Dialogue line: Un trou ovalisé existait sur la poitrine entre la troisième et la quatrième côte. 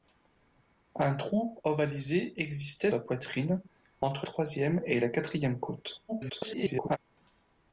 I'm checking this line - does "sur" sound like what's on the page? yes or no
no